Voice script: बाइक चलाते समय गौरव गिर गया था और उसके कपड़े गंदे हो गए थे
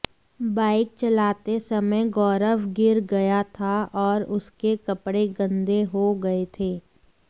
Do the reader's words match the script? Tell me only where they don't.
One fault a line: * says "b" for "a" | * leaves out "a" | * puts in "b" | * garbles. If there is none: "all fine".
all fine